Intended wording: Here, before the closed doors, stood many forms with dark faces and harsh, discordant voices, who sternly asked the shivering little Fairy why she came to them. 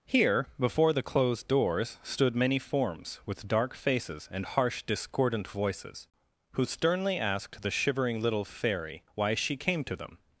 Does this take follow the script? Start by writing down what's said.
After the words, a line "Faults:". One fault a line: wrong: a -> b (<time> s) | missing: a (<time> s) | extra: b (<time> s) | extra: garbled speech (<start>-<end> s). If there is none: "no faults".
Here, before the closed doors, stood many forms with dark faces and harsh, discordant voices, who sternly asked the shivering little Fairy why she came to them.
Faults:
no faults